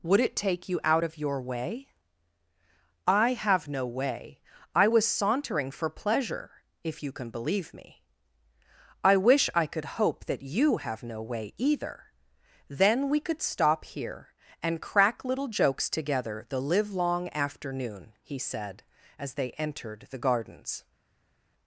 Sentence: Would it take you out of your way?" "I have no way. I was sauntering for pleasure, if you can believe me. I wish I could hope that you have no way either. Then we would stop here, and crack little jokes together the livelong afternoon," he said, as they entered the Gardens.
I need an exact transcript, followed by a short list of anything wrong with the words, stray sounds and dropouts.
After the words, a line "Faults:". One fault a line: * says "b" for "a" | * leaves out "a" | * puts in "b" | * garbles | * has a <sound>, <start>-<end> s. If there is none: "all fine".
Would it take you out of your way?" "I have no way. I was sauntering for pleasure, if you can believe me. I wish I could hope that you have no way either. Then we could stop here, and crack little jokes together the livelong afternoon," he said, as they entered the Gardens.
Faults:
* says "could" for "would"